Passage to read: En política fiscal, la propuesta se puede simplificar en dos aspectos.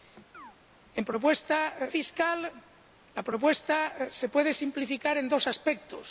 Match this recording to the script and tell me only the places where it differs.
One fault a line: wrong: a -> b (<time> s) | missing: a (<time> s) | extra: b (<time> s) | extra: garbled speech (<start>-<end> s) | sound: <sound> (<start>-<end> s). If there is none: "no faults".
sound: chirp (0.3-0.6 s)
wrong: política -> propuesta (1.0 s)